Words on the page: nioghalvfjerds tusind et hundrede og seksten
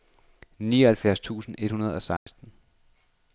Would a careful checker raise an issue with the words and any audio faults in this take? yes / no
yes